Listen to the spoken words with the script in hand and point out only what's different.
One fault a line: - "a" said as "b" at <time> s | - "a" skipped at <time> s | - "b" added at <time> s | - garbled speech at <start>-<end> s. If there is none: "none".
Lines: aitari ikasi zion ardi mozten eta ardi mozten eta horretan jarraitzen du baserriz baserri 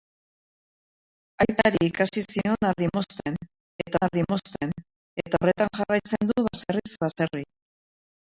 none